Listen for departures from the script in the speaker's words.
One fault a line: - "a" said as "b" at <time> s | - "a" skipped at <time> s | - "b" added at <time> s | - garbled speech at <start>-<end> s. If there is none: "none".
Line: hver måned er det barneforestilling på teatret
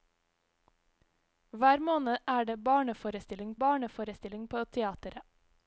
- "barneforestilling" added at 3.6 s